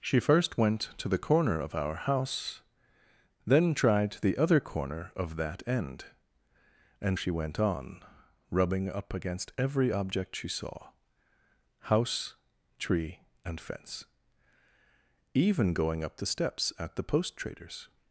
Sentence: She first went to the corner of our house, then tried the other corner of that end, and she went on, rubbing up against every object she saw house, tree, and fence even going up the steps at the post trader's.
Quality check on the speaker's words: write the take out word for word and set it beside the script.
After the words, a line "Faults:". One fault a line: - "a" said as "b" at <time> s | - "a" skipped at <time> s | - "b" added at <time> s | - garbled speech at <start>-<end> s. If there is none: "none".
She first went to the corner of our house, then tried the other corner of that end, and she went on, rubbing up against every object she saw house, tree, and fence even going up the steps at the post trader's.
Faults:
none